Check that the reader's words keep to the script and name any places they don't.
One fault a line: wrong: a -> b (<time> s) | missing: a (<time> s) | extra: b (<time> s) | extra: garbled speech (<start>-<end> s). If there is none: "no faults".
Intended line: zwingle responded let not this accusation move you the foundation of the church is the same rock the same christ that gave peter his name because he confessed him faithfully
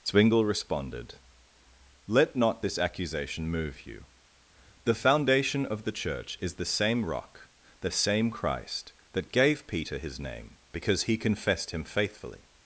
no faults